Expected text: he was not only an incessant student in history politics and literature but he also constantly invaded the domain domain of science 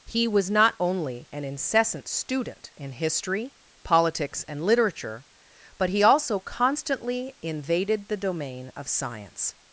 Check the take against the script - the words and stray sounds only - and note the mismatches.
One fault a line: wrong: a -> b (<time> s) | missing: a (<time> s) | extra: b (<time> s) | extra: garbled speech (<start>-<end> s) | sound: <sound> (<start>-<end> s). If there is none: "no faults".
missing: domain (8.7 s)